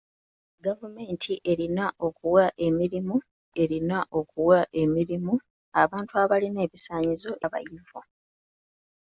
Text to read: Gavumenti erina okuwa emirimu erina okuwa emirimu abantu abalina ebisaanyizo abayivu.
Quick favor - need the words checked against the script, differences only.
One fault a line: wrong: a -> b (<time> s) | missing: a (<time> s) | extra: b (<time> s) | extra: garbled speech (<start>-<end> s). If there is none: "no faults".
no faults